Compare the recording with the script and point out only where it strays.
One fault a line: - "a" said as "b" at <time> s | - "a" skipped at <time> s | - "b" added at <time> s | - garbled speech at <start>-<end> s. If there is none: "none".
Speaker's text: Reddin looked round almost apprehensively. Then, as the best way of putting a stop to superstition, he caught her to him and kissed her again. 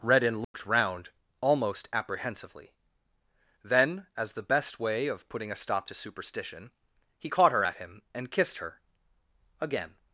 - "to" said as "at" at 7.6 s